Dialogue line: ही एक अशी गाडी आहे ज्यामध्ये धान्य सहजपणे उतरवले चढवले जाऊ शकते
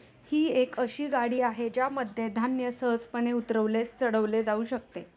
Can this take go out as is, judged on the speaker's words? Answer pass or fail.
pass